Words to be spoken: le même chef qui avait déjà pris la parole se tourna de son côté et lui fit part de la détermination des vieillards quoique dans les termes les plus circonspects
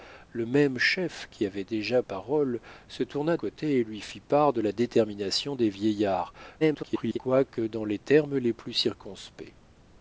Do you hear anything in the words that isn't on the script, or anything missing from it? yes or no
yes